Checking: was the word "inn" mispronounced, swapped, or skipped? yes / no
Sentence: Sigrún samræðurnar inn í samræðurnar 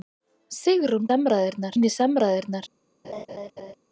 no